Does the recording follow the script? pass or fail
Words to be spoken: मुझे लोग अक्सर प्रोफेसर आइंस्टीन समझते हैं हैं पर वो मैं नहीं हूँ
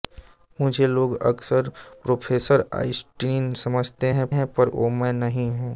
pass